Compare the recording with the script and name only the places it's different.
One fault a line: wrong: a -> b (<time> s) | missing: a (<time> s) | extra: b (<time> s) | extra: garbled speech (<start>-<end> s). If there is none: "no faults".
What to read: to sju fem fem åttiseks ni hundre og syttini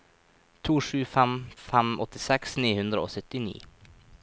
no faults